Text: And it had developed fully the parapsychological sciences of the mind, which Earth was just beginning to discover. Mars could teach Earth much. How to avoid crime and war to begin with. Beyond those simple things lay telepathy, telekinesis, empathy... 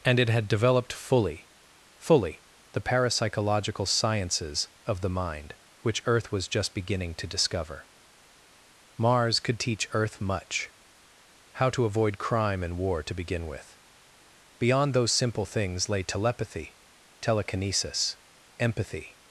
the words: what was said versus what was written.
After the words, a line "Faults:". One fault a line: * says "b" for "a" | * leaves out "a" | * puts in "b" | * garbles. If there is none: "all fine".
And it had developed fully fully the parapsychological sciences of the mind, which Earth was just beginning to discover. Mars could teach Earth much. How to avoid crime and war to begin with. Beyond those simple things lay telepathy, telekinesis, empathy...
Faults:
* puts in "fully"